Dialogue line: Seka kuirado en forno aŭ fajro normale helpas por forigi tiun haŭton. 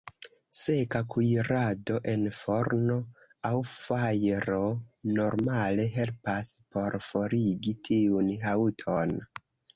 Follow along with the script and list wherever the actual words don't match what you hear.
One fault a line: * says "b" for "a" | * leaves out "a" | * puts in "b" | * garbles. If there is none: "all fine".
all fine